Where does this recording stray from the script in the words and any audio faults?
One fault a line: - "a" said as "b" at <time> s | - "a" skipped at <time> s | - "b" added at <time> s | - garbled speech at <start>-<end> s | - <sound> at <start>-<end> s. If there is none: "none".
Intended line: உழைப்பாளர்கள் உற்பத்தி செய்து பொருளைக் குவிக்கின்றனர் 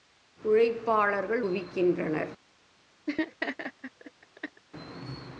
- "உற்பத்தி செய்து பொருளைக்" skipped at 1.4 s
- laugh at 3.1-4.6 s